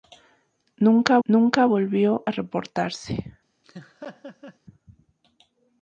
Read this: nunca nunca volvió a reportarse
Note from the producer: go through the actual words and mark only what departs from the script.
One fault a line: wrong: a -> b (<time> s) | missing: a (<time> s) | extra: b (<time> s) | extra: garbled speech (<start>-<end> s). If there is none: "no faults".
no faults